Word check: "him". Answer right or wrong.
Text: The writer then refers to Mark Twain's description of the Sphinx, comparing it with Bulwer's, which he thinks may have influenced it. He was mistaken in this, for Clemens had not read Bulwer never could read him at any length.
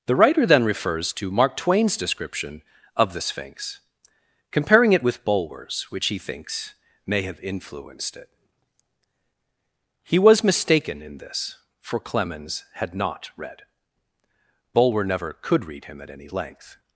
right